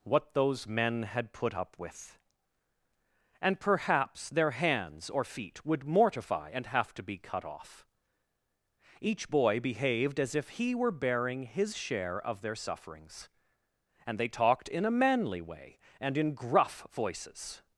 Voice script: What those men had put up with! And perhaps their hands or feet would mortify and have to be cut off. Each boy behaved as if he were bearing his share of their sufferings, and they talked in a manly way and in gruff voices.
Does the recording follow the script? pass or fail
pass